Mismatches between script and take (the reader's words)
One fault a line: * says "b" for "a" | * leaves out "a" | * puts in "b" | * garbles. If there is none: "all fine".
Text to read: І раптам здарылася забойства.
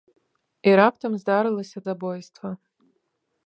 all fine